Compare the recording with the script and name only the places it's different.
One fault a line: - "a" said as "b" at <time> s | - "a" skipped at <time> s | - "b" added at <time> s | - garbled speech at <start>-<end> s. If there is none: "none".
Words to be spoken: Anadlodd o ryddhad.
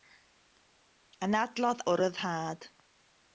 none